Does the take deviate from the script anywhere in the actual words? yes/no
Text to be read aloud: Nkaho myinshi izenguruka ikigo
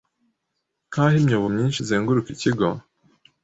yes